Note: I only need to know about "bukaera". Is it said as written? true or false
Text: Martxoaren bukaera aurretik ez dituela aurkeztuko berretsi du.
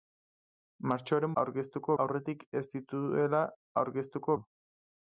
false